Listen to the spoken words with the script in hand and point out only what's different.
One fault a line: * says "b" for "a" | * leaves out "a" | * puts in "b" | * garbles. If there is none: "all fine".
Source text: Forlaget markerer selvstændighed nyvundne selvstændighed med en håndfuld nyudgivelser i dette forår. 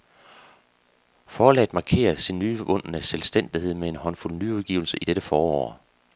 * says "sin" for "selvstændighed"